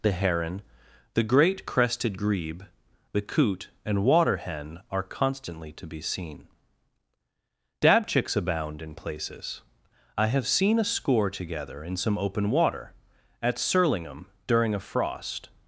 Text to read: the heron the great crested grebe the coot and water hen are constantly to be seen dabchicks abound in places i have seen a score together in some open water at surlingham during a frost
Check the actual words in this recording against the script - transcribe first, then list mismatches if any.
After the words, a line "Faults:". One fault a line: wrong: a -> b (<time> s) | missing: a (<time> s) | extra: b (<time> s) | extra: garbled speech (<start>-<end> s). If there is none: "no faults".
the heron the great crested grebe the coot and water hen are constantly to be seen dabchicks abound in places i have seen a score together in some open water at surlingham during a frost
Faults:
no faults